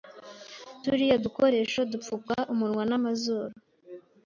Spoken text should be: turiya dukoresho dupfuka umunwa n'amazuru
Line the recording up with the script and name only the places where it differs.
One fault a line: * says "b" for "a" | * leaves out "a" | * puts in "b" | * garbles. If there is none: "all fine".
all fine